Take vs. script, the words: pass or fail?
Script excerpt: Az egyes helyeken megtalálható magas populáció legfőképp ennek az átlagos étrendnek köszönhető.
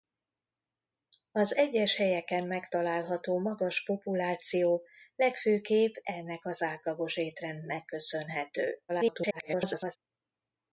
fail